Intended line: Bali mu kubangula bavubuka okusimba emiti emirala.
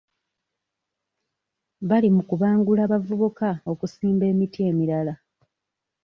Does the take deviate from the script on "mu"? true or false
false